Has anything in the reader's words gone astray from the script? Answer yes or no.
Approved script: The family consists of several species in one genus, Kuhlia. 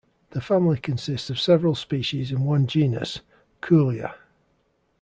no